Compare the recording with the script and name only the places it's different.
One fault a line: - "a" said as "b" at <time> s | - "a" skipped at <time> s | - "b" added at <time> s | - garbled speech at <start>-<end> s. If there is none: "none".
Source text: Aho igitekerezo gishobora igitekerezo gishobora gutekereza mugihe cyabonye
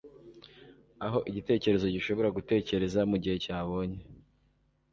- "igitekerezo gishobora" skipped at 2.3 s